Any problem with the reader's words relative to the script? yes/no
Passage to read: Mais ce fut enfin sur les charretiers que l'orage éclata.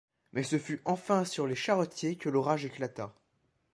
no